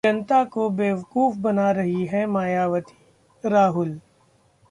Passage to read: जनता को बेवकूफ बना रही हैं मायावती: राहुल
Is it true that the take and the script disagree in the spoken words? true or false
false